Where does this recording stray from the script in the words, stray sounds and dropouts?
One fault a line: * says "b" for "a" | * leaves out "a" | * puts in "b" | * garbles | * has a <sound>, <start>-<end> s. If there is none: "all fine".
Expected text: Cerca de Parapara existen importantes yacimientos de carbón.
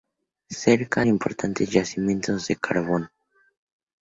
* leaves out "de Parapara existen"